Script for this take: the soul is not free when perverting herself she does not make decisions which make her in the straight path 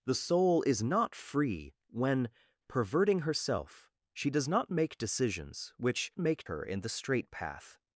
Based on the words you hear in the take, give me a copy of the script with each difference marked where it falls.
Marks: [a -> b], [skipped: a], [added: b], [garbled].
the soul is not free when perverting herself she does not make decisions which make her in the straight path